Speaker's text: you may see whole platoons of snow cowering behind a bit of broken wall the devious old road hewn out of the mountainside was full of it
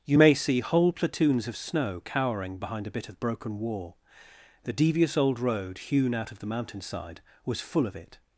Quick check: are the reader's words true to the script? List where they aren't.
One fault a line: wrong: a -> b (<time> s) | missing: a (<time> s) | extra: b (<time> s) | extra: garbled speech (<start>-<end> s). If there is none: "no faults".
no faults